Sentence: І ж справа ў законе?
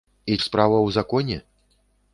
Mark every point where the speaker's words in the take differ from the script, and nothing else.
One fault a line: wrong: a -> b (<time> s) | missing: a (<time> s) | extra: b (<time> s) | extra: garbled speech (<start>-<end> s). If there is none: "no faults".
no faults